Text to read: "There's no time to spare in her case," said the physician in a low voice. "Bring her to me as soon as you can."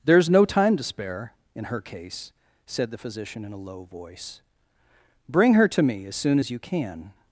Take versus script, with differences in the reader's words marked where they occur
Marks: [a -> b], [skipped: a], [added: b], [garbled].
"There's no time to spare in her case," said the physician in a low voice. "Bring her to me as soon as you can."